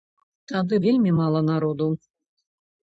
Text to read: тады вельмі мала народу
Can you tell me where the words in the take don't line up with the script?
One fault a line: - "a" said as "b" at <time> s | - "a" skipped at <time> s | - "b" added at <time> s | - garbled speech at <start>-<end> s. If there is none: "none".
none